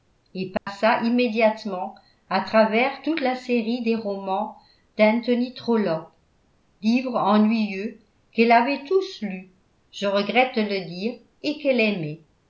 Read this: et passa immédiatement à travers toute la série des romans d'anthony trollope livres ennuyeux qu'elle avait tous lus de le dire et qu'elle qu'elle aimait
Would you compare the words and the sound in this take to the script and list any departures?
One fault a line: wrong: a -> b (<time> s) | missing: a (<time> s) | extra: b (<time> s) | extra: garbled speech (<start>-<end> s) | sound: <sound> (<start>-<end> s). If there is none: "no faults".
sound: dropout (0.6-0.7 s)
extra: je regrette (9.9 s)
missing: qu'elle (11.8 s)